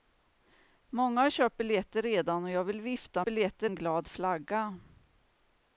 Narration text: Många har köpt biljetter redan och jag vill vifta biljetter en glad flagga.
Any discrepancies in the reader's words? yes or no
no